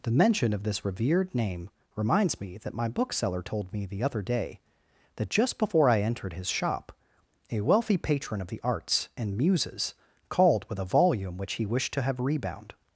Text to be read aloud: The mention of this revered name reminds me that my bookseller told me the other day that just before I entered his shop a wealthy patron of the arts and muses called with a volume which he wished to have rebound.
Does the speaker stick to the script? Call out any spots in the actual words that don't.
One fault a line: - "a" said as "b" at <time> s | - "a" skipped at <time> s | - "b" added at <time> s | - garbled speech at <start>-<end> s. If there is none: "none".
none